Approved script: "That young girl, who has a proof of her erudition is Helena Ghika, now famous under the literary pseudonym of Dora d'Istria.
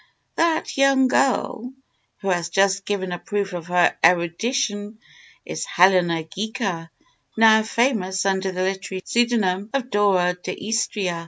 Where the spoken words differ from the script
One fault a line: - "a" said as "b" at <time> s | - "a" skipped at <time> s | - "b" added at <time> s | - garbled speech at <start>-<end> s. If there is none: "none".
- "just given" added at 2.5 s